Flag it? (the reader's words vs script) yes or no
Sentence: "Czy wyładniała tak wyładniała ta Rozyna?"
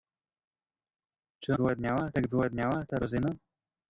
no